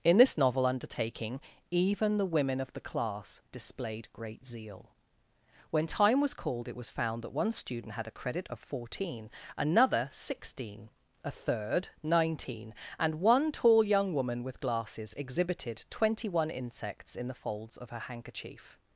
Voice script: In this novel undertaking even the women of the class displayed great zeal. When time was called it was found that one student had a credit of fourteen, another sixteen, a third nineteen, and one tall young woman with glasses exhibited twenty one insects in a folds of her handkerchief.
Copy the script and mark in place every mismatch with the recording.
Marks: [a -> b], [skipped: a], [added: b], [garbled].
In this novel undertaking even the women of the class displayed great zeal. When time was called it was found that one student had a credit of fourteen, another sixteen, a third nineteen, and one tall young woman with glasses exhibited twenty one insects in [a -> the] folds of her handkerchief.